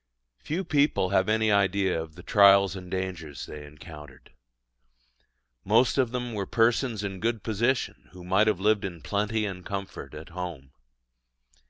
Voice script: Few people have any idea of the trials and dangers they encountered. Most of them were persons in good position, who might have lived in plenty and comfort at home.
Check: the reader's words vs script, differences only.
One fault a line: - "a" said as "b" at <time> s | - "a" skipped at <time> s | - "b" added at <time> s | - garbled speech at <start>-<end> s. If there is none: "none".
none